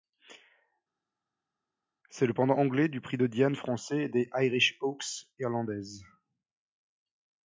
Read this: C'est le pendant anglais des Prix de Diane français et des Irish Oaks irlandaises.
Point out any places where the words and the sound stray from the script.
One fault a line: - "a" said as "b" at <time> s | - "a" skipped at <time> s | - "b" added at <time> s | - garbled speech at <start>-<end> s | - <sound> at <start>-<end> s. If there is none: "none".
- "des" said as "du" at 2.9 s